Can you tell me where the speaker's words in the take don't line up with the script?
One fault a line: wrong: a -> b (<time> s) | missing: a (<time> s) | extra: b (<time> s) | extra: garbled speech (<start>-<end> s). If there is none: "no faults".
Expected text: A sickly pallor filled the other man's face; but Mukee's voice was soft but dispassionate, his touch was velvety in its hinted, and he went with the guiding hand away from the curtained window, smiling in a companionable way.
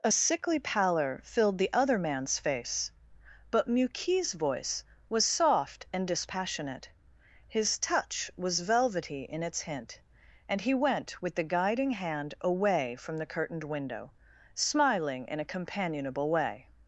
wrong: but -> and (5.9 s)
wrong: hinted -> hint (9.6 s)